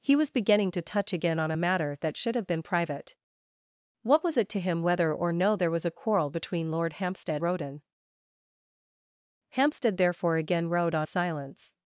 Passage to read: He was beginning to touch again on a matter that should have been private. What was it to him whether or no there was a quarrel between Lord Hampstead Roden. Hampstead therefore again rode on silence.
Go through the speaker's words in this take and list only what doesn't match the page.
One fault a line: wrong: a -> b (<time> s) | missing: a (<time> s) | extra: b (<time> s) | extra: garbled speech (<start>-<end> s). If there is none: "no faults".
no faults